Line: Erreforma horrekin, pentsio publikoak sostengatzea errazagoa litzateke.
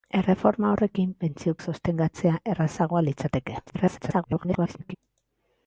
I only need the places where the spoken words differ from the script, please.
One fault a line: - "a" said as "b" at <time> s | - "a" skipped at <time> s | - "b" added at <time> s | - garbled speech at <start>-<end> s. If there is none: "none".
- "publikoak" skipped at 1.5 s
- garbled speech at 3.7-5.0 s